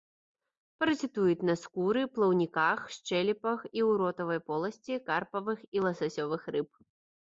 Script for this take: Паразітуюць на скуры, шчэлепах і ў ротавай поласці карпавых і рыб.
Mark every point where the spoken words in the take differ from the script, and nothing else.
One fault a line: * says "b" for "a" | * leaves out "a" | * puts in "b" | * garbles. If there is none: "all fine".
* puts in "плаўніках"
* puts in "ласасёвых"